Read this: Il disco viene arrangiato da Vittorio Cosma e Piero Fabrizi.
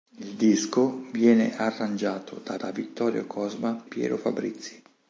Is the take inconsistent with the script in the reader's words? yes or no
yes